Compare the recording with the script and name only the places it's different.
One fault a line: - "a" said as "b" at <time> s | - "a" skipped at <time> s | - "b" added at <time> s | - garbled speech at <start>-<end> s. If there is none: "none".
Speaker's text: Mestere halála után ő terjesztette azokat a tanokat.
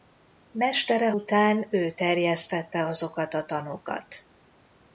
- "halála" skipped at 1.1 s